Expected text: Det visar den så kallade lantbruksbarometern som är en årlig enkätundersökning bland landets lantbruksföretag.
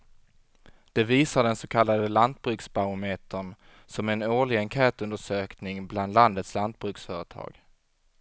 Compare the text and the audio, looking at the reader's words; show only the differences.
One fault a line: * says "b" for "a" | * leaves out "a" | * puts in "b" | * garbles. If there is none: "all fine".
all fine